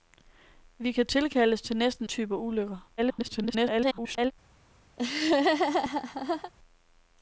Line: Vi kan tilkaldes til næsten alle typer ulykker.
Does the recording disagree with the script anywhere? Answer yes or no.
yes